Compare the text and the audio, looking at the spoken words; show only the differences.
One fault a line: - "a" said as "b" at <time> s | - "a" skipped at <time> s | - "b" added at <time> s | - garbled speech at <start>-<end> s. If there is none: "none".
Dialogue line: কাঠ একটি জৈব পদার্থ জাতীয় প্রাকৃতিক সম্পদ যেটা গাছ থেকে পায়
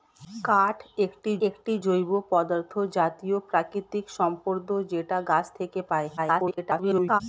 - "একটি" added at 1.5 s
- garbled speech at 6.2-7.2 s